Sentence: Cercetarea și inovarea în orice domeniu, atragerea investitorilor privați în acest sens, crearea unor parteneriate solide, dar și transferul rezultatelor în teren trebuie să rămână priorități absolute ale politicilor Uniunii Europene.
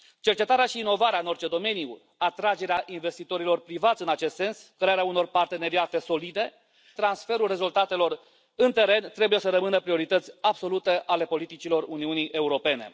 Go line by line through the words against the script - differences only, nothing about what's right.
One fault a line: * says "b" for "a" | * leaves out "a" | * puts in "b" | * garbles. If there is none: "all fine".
* leaves out "dar și"